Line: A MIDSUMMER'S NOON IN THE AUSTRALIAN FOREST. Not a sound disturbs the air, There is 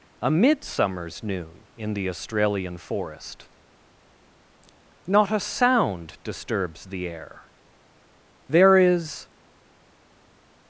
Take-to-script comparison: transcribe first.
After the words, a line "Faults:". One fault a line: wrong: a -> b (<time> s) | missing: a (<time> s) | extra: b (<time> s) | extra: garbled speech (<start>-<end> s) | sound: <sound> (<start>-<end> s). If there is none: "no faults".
A MIDSUMMER'S NOON IN THE AUSTRALIAN FOREST. Not a sound disturbs the air, There is
Faults:
no faults